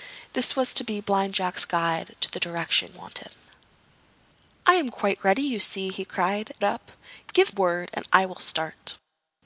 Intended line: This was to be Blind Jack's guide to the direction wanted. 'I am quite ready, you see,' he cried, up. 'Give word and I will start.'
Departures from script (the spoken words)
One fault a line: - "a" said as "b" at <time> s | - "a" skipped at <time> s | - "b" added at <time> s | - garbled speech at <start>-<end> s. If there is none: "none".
none